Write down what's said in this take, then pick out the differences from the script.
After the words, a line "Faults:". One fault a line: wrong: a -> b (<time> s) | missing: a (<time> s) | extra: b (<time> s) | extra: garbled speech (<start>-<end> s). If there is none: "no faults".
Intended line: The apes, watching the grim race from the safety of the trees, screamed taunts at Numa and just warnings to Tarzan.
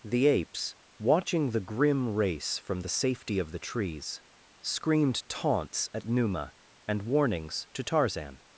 The apes, watching the grim race from the safety of the trees, screamed taunts at Numa and warnings to Tarzan.
Faults:
missing: just (7.0 s)